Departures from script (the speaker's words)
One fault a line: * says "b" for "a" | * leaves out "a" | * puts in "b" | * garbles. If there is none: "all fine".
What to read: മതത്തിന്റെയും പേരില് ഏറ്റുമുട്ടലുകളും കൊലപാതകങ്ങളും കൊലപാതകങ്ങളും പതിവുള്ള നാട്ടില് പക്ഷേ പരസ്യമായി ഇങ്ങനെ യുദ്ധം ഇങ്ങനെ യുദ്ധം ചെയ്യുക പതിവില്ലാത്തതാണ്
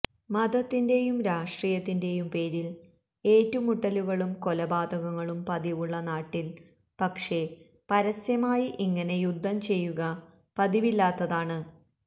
* puts in "രാഷ്ട്രീയത്തിന്റെയും"
* leaves out "കൊലപാതകങ്ങളും"
* leaves out "ഇങ്ങനെ യുദ്ധം"